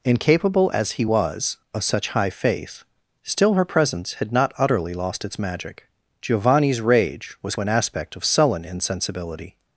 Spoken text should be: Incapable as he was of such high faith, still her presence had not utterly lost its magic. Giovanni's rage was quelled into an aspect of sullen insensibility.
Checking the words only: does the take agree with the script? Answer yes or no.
no